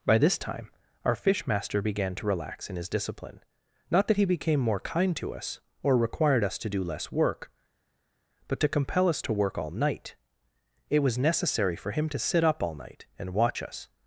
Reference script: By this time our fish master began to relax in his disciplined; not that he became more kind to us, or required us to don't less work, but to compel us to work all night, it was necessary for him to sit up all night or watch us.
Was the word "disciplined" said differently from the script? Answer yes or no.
yes